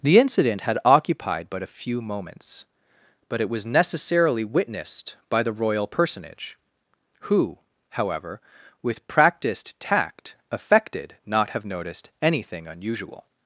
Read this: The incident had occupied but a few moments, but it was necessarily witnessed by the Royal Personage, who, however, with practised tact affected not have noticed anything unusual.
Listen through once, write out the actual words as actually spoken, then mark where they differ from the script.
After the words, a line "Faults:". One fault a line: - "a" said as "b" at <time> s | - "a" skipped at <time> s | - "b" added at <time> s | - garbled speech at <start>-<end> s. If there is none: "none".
The incident had occupied but a few moments, but it was necessarily witnessed by the Royal Personage, who, however, with practised tact affected not have noticed anything unusual.
Faults:
none